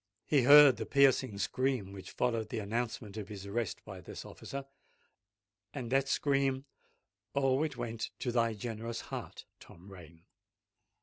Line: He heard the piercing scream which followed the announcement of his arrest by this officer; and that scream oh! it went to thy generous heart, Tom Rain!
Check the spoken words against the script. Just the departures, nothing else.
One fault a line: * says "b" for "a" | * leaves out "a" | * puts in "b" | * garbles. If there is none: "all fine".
all fine